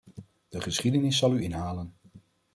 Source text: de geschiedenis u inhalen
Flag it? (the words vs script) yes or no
yes